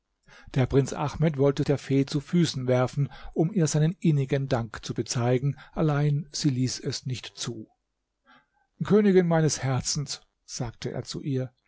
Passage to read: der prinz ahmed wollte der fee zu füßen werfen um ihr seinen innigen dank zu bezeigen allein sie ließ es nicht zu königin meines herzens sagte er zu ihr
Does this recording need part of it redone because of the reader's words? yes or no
no